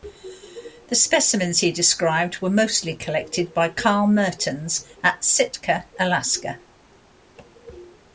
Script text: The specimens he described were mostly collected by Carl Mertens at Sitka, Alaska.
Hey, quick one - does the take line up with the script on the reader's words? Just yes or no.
yes